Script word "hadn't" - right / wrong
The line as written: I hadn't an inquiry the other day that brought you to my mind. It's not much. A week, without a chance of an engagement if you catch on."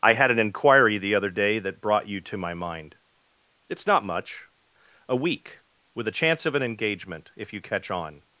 wrong